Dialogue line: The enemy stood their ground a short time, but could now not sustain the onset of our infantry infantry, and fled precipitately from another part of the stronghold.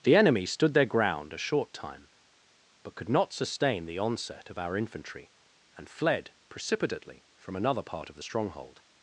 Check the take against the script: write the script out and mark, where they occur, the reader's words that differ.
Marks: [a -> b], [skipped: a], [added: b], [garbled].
The enemy stood their ground a short time, but could [skipped: now] not sustain the onset of our infantry [skipped: infantry,] and fled precipitately from another part of the stronghold.